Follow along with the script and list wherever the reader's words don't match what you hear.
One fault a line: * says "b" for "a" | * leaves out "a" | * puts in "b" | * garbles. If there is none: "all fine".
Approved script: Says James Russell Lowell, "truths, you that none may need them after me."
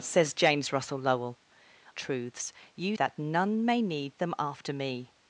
all fine